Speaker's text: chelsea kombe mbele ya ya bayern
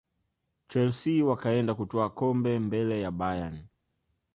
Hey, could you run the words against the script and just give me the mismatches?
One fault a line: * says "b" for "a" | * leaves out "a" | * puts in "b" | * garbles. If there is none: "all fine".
* puts in "wakaenda kutwaa"
* leaves out "ya"